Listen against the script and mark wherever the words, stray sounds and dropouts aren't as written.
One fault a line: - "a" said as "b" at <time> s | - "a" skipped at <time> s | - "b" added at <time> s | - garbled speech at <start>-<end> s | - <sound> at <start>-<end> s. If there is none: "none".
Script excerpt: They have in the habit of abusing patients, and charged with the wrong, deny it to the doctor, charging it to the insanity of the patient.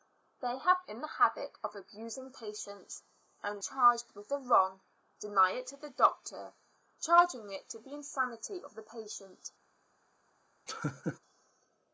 - laugh at 10.7-11.2 s